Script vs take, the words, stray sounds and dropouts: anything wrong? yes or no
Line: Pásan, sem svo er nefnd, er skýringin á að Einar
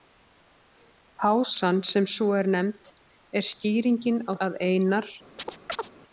yes